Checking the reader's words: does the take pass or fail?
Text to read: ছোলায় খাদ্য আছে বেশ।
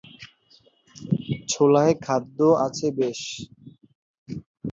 pass